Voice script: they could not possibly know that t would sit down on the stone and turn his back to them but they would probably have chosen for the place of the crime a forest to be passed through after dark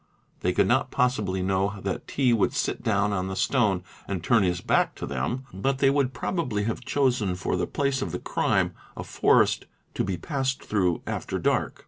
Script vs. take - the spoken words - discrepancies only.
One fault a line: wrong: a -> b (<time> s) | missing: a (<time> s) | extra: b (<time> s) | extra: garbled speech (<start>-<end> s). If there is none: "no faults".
no faults